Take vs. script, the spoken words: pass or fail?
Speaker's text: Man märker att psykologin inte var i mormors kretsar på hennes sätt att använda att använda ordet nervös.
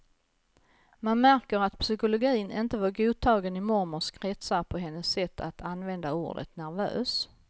fail